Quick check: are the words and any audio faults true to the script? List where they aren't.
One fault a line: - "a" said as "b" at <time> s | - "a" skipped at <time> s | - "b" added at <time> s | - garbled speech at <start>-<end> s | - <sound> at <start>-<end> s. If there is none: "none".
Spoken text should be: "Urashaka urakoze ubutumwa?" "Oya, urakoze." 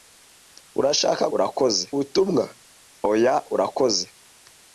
none